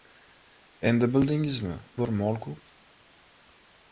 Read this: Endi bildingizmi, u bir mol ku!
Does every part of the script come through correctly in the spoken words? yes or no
no